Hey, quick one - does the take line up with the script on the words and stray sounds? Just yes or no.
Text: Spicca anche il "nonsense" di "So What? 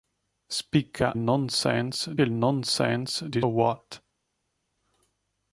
no